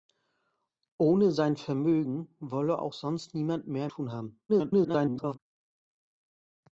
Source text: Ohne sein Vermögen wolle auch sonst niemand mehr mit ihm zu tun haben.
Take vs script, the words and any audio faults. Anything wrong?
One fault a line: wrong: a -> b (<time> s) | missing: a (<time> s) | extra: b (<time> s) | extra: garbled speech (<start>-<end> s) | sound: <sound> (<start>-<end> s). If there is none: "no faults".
missing: mit ihm zu (3.9 s)
extra: garbled speech (4.5-5.4 s)